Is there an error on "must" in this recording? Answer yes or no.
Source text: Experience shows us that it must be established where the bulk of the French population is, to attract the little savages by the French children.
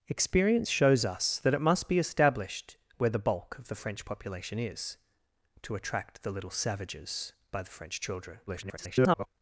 no